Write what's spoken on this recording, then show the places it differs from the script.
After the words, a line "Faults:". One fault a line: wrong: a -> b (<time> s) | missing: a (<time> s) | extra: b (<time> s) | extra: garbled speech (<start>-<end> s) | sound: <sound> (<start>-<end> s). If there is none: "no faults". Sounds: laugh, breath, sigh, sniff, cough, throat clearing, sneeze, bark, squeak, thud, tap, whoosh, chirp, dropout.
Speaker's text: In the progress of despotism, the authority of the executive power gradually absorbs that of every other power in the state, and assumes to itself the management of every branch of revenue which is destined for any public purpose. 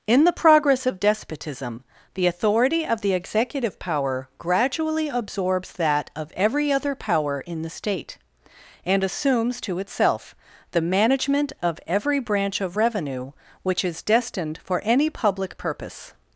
In the progress of despotism, the authority of the executive power gradually absorbs that of every other power in the state, and assumes to itself the management of every branch of revenue which is destined for any public purpose.
Faults:
no faults